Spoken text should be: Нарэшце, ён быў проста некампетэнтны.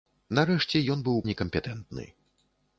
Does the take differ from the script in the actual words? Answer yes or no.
yes